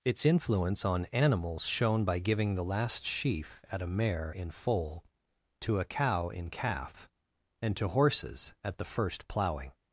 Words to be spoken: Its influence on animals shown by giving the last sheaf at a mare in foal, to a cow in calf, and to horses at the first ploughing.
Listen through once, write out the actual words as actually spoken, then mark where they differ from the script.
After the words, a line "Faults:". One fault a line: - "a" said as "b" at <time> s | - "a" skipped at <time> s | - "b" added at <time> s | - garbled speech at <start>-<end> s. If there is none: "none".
Its influence on animals shown by giving the last sheaf at a mare in foal, to a cow in calf, and to horses at the first ploughing.
Faults:
none